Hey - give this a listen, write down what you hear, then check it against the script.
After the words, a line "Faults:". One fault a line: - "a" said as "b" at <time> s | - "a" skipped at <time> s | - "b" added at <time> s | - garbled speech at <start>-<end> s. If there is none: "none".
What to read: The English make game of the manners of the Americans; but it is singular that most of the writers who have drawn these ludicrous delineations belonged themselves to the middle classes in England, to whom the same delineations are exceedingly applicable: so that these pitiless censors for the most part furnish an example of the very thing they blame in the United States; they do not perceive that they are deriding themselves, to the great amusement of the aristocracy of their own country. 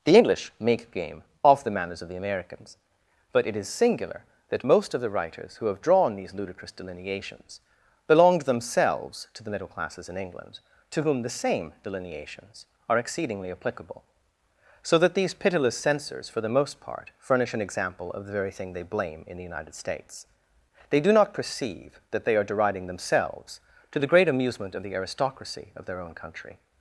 The English make game of the manners of the Americans; but it is singular that most of the writers who have drawn these ludicrous delineations belonged themselves to the middle classes in England, to whom the same delineations are exceedingly applicable: so that these pitiless censors for the most part furnish an example of the very thing they blame in the United States; they do not perceive that they are deriding themselves, to the great amusement of the aristocracy of their own country.
Faults:
none